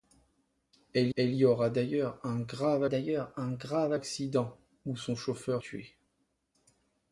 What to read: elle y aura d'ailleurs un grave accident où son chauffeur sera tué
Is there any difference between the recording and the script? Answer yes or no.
yes